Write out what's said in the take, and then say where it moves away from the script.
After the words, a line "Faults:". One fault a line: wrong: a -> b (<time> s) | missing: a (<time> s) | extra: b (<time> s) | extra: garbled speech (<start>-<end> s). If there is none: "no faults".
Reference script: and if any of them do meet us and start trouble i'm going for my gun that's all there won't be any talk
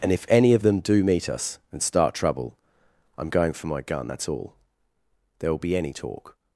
and if any of them do meet us and start trouble i'm going for my gun that's all there will be any talk
Faults:
wrong: won't -> will (5.5 s)